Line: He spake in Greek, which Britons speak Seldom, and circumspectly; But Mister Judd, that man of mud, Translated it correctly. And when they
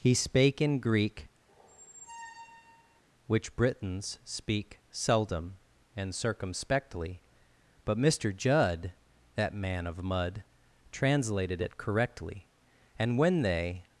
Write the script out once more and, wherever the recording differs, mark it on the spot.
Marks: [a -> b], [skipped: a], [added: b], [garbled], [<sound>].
He spake in Greek, [squeak] which Britons speak Seldom, and circumspectly; But Mister Judd, that man of mud, Translated it correctly. And when they